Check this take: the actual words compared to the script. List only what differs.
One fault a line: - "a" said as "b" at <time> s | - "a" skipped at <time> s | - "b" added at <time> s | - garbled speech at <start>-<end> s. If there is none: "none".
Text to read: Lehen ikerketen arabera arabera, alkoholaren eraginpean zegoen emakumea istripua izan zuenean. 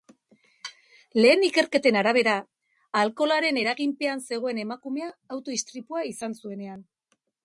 - "arabera" skipped at 2.3 s
- "auto" added at 5.4 s